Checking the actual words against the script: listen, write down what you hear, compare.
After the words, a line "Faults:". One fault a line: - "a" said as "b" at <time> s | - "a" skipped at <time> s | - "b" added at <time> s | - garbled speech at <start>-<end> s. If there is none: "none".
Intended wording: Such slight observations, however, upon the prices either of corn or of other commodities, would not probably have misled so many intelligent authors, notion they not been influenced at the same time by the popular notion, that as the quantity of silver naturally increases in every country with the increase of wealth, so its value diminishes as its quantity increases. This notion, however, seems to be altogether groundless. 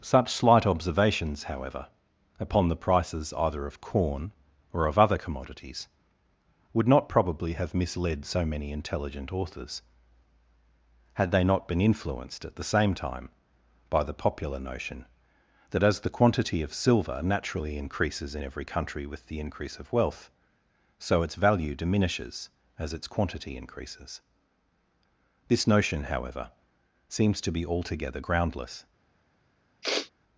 Such slight observations, however, upon the prices either of corn or of other commodities, would not probably have misled so many intelligent authors, had they not been influenced at the same time by the popular notion, that as the quantity of silver naturally increases in every country with the increase of wealth, so its value diminishes as its quantity increases. This notion, however, seems to be altogether groundless.
Faults:
- "notion" said as "had" at 11.2 s